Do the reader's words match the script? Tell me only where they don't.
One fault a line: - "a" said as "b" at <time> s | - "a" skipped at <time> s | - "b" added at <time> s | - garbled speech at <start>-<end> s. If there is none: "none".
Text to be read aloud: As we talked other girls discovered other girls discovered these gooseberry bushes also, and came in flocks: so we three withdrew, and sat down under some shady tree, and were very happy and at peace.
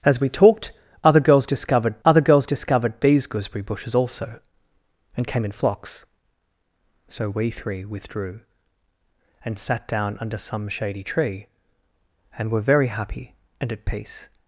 none